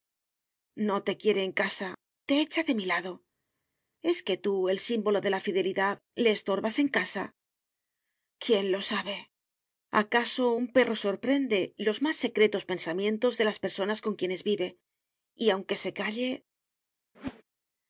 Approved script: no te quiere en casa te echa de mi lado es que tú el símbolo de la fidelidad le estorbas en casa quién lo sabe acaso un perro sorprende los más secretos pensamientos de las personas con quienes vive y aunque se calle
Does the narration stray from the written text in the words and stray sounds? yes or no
yes